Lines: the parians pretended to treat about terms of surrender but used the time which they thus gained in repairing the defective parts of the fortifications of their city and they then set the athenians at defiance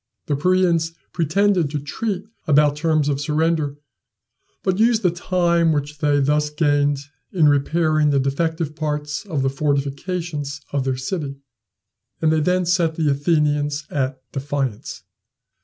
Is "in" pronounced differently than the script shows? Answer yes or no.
no